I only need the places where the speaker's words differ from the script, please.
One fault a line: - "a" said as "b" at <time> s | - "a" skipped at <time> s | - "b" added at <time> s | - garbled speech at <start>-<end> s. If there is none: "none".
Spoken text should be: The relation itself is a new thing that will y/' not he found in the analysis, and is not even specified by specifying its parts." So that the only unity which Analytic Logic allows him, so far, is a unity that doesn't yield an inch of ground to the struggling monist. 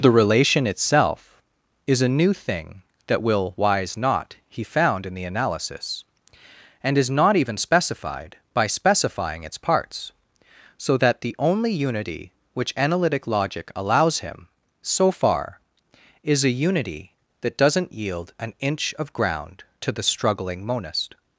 - "y" said as "wise" at 3.5 s